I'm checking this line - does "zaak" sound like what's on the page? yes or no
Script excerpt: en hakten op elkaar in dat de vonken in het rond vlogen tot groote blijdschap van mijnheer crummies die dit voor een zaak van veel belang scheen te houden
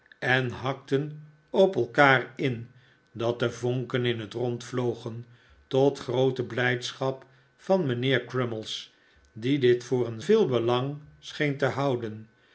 no